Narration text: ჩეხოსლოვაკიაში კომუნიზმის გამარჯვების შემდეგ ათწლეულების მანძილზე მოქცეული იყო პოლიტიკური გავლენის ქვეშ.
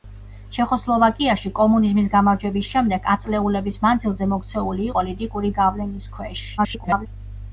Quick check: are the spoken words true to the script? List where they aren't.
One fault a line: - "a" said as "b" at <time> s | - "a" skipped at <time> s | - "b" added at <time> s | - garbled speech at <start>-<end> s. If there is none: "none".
- "იყო" skipped at 4.9 s
- garbled speech at 6.6-7.1 s